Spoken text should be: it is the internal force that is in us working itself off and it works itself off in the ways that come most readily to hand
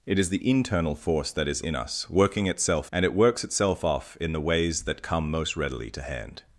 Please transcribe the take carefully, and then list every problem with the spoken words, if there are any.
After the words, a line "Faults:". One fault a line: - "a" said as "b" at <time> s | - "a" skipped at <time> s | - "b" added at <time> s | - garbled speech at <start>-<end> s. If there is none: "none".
it is the internal force that is in us working itself and it works itself off in the ways that come most readily to hand
Faults:
- "off" skipped at 2.9 s